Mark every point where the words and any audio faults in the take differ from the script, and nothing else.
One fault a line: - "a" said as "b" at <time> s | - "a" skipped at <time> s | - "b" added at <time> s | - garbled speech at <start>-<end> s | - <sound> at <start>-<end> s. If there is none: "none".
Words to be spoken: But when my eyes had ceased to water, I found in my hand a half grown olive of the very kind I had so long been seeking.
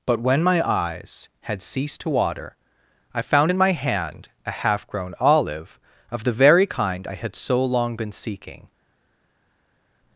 none